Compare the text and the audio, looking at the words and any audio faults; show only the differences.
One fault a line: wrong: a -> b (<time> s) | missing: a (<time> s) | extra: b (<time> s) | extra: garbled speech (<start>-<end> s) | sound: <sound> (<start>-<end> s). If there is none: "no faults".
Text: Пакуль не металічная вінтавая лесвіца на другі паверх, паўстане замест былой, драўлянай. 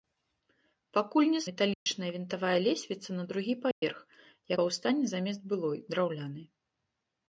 sound: dropout (1.7-1.9 s)
sound: dropout (3.7-3.8 s)